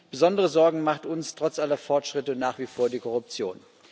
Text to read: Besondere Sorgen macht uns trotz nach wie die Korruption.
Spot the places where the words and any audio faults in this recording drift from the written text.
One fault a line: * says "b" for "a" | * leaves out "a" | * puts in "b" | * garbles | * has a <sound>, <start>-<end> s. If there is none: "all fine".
* puts in "aller Fortschritte"
* puts in "vor"